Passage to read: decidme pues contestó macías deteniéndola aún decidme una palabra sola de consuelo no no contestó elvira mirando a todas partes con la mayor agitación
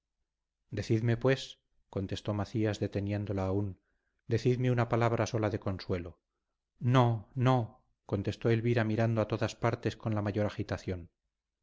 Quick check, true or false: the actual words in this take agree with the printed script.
true